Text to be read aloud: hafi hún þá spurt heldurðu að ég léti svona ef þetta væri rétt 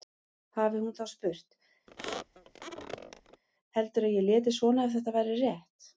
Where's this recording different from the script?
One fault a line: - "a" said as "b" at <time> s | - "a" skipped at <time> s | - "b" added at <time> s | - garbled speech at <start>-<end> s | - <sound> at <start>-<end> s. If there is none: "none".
- squeak at 1.9-3.4 s